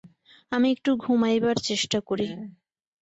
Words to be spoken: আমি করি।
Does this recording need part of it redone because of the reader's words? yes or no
yes